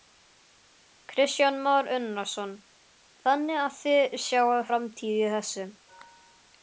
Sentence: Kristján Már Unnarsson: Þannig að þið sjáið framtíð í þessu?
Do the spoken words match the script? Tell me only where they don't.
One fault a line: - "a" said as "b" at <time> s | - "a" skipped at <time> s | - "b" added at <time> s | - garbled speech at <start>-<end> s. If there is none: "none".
none